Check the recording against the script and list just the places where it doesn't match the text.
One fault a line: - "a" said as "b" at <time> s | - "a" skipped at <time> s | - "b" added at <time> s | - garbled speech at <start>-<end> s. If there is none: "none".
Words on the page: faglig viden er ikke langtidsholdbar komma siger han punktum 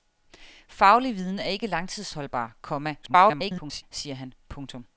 - garbled speech at 3.0-3.8 s